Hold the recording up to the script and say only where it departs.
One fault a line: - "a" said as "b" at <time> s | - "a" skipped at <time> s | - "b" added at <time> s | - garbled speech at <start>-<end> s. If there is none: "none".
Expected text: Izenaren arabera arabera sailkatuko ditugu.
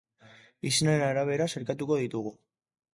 - "arabera" skipped at 1.5 s